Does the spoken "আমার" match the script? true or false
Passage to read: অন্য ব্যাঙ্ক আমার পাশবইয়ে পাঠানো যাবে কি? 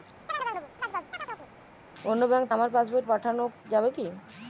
true